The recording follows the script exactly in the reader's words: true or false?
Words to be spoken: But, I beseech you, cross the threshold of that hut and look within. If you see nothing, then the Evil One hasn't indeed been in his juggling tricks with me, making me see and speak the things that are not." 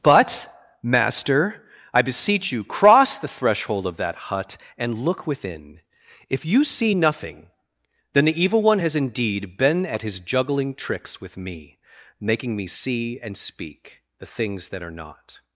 false